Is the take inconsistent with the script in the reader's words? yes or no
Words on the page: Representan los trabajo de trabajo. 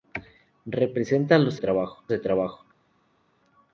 no